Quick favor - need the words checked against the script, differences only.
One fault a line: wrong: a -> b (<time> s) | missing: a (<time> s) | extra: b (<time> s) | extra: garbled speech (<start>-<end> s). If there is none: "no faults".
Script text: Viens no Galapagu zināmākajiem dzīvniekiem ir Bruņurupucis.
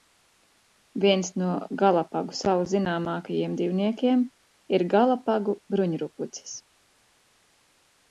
extra: salu (2.4 s)
extra: Galapagu (4.9 s)